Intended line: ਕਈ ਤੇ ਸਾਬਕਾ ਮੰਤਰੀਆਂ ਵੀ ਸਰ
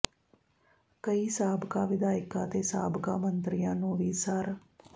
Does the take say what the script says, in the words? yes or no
no